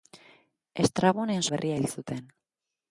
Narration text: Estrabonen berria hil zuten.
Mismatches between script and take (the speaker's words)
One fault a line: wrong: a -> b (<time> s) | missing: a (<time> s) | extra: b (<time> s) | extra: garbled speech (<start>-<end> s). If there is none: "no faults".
no faults